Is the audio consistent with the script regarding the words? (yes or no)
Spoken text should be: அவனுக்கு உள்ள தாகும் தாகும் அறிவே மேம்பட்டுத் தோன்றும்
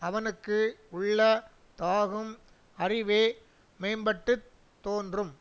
no